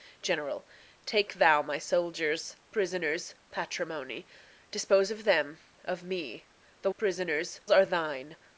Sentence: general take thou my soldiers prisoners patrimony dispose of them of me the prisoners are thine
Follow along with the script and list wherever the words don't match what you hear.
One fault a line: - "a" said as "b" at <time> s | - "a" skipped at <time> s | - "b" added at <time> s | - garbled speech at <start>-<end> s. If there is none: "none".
none